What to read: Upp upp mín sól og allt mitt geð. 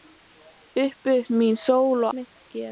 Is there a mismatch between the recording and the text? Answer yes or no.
yes